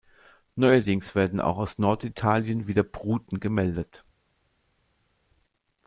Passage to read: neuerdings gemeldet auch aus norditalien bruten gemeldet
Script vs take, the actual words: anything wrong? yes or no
yes